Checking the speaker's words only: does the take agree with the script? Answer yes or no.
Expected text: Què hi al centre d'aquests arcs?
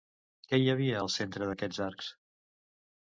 no